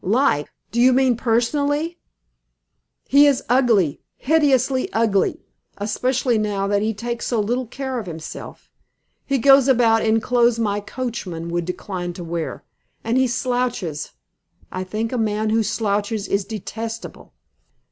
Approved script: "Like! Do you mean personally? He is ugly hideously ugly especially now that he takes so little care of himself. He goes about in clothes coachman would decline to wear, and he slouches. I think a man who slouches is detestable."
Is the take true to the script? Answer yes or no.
no